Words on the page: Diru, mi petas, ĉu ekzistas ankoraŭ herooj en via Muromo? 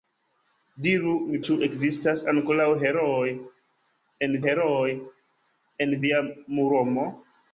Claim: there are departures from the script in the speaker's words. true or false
true